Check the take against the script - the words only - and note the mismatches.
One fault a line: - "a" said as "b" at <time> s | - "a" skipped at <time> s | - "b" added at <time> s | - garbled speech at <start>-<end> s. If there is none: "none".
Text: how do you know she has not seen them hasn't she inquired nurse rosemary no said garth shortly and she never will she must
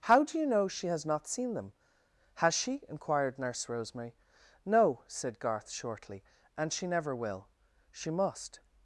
- "hasn't" said as "has" at 2.4 s